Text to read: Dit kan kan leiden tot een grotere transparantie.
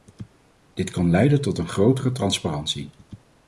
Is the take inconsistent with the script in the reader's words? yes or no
yes